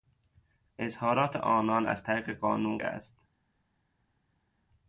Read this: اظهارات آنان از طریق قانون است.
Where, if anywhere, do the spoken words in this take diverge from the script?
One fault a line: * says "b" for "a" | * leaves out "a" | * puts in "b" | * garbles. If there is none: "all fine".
all fine